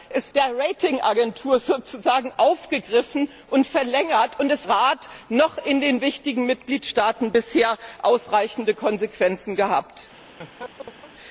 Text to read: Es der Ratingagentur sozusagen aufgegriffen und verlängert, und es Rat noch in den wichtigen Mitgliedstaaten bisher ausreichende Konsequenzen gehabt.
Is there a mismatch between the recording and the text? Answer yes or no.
no